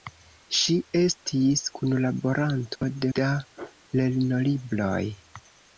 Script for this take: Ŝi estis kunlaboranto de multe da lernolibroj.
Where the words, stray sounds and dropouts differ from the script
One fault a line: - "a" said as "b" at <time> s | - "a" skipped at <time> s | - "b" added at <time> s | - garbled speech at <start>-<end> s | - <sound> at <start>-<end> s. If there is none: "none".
- dropout at 2.8-2.8 s
- "multe" skipped at 3.1 s